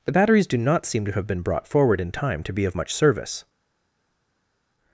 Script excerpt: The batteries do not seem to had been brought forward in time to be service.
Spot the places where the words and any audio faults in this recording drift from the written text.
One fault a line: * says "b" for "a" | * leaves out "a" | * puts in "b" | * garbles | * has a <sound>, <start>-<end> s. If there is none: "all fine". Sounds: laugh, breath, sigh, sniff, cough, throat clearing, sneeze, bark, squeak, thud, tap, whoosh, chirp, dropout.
* says "have" for "had"
* puts in "of much"